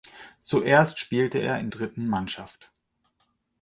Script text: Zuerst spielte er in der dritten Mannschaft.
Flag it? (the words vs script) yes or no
yes